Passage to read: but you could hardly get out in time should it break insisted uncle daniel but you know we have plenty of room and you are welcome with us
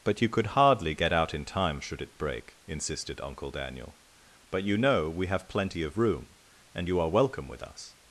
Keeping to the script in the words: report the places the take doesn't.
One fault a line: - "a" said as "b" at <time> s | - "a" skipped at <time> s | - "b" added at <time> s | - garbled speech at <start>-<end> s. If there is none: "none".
none